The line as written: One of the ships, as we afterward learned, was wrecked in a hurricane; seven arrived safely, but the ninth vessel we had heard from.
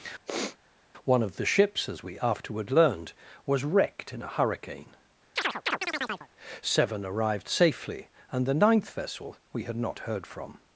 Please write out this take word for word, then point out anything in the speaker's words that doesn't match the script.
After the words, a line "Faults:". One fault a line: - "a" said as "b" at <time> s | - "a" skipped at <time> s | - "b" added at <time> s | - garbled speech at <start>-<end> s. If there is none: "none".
One of the ships, as we afterward learned, was wrecked in a hurricane; seven arrived safely, and the ninth vessel we had not heard from.
Faults:
- "but" said as "and" at 8.3 s
- "not" added at 9.8 s